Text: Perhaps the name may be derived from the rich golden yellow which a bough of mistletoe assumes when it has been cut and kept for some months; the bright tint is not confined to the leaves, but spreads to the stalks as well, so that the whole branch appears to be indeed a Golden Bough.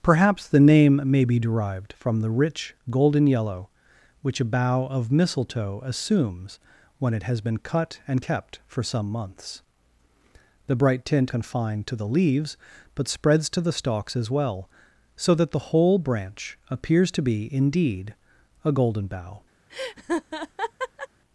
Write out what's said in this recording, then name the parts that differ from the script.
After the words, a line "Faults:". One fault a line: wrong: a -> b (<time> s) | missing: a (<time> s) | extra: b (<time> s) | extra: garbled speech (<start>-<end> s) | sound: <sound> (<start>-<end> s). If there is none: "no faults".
Perhaps the name may be derived from the rich golden yellow which a bough of mistletoe assumes when it has been cut and kept for some months; the bright tint confined to the leaves, but spreads to the stalks as well, so that the whole branch appears to be indeed a Golden Bough.
Faults:
missing: is not (11.3 s)
sound: laugh (19.7-21.1 s)